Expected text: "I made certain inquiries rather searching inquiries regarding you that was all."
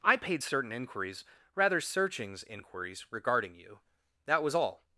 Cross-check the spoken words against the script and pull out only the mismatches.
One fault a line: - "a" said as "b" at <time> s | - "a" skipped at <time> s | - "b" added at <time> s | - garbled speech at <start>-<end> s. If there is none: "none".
- "made" said as "paid" at 0.2 s
- "searching" said as "searchings" at 1.8 s